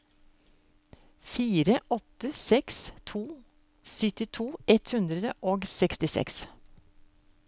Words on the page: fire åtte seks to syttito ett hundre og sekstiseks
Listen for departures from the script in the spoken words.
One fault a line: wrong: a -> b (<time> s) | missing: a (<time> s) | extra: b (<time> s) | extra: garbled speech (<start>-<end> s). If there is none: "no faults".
no faults